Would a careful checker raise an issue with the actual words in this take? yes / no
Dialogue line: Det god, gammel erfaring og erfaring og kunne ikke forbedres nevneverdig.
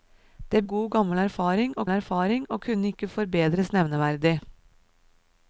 no